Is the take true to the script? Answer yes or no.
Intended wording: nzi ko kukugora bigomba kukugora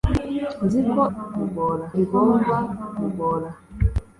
yes